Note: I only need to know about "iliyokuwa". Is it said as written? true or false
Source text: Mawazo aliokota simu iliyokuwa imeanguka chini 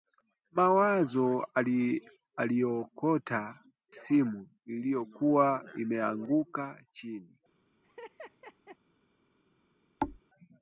true